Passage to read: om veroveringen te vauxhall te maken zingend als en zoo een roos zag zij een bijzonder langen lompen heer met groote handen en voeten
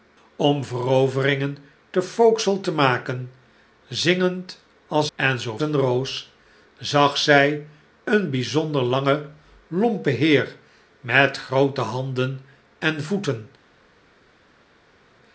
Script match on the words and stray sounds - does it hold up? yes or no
yes